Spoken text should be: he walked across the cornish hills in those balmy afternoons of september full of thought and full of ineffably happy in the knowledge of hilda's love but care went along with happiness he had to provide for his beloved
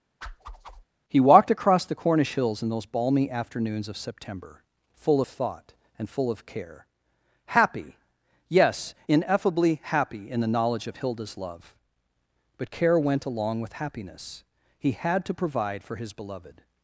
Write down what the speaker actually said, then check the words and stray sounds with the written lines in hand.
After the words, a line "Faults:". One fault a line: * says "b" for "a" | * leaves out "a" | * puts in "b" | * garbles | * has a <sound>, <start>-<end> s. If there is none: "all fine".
he walked across the cornish hills in those balmy afternoons of september full of thought and full of care happy yes ineffably happy in the knowledge of hilda's love but care went along with happiness he had to provide for his beloved
Faults:
* has a whoosh, 0.2-0.8 s
* puts in "care happy yes"